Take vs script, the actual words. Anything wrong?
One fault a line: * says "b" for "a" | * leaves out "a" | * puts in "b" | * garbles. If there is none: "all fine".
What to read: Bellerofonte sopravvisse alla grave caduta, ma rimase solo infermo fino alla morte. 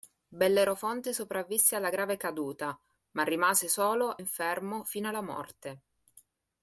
all fine